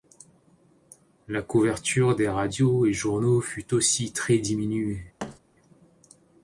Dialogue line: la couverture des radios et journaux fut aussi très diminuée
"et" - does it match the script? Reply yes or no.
yes